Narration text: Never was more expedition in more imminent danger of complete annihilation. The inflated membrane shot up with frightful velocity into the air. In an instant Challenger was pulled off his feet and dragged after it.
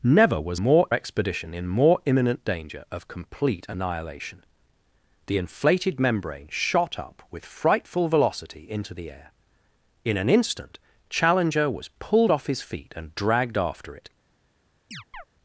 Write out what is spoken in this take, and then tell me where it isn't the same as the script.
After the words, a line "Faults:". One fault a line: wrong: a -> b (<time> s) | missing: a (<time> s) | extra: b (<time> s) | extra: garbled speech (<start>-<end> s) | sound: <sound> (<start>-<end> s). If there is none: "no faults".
Never was more expedition in more imminent danger of complete annihilation. The inflated membrane shot up with frightful velocity into the air. In an instant Challenger was pulled off his feet and dragged after it.
Faults:
sound: chirp (14.9-15.2 s)